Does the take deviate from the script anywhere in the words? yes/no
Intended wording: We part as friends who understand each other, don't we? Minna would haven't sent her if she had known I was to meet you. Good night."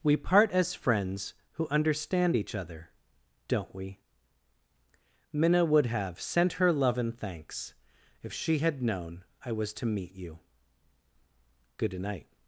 yes